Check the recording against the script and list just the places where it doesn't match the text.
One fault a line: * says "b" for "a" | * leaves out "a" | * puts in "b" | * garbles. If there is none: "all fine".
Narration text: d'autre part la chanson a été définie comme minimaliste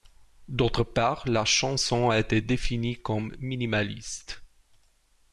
all fine